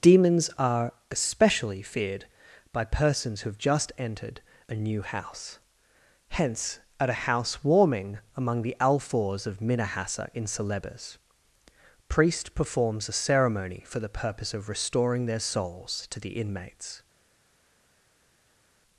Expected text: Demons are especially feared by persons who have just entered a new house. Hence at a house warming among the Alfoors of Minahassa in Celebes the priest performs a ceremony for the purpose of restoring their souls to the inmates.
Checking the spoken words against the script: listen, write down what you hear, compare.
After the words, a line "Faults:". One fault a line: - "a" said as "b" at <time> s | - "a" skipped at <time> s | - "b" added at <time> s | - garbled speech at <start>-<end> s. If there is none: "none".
Demons are especially feared by persons who have just entered a new house. Hence at a house warming among the Alfoors of Minahassa in Celebes priest performs a ceremony for the purpose of restoring their souls to the inmates.
Faults:
- "the" skipped at 11.2 s